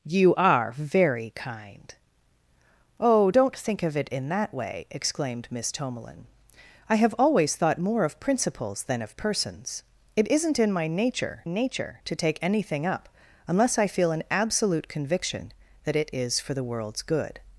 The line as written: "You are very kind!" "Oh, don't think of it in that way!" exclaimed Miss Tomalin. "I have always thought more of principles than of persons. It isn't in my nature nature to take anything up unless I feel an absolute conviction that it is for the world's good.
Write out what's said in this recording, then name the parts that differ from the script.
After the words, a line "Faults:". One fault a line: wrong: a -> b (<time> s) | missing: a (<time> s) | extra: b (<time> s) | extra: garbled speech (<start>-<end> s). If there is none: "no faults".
"You are very kind!" "Oh, don't think of it in that way!" exclaimed Miss Tomalin. "I have always thought more of principles than of persons. It isn't in my nature nature to take anything up unless I feel an absolute conviction that it is for the world's good.
Faults:
no faults